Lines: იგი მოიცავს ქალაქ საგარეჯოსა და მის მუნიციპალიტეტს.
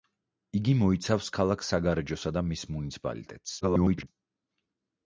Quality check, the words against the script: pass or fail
fail